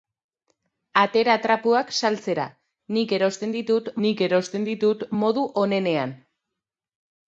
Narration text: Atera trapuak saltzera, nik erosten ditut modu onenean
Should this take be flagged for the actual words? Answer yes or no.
yes